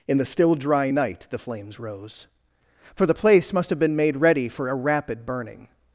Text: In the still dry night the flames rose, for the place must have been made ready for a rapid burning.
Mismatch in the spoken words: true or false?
false